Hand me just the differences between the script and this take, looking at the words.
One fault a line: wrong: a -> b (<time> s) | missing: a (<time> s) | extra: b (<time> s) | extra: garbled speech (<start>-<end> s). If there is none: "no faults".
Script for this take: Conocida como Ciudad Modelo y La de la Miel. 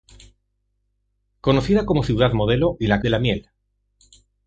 no faults